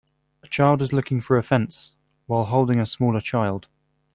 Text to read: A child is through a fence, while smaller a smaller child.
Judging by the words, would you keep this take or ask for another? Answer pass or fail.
fail